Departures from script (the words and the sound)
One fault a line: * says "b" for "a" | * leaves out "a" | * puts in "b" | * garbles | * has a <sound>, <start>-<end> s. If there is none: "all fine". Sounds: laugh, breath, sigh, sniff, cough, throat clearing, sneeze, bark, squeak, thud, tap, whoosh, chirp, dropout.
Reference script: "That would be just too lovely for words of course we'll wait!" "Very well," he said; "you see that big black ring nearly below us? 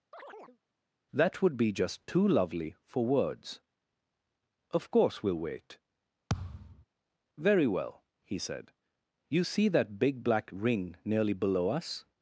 * has a chirp, 0.1-0.6 s
* has a thud, 6.3-6.8 s